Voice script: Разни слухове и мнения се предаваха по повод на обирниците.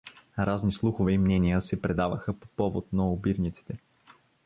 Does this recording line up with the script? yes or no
yes